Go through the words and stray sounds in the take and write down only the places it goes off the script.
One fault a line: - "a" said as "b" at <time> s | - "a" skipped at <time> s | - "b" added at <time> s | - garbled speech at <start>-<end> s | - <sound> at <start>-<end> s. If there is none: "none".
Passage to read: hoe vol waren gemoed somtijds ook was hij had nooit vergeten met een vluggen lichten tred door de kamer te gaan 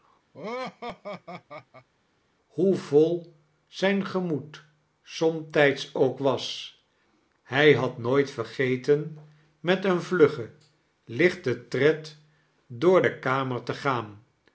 - laugh at 0.3-1.9 s
- "waren" said as "zijn" at 3.7 s